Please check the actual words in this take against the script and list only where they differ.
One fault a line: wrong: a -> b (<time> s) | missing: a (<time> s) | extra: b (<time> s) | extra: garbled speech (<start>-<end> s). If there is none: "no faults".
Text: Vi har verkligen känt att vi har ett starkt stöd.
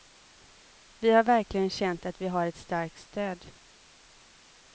no faults